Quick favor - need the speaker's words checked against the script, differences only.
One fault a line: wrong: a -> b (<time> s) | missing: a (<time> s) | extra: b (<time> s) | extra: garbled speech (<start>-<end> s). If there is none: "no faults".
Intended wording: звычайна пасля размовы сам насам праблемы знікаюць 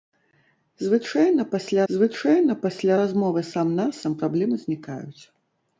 extra: звычайна пасля (1.9 s)